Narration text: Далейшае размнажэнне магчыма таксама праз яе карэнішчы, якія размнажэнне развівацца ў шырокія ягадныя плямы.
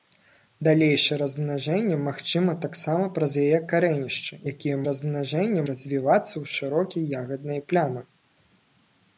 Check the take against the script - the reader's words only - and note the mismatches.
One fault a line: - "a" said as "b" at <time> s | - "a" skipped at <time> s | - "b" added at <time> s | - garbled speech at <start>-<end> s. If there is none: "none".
none